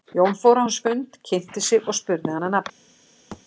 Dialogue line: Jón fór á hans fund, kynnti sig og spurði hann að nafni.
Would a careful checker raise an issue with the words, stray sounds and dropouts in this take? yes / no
yes